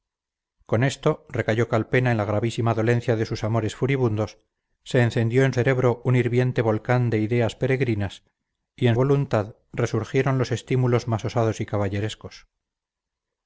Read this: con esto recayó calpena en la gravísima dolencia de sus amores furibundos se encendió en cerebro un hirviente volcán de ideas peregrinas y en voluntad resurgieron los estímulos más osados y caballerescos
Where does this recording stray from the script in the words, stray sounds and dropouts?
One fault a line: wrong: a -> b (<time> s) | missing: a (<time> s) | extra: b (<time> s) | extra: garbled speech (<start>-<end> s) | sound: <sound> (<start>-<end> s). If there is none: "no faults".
no faults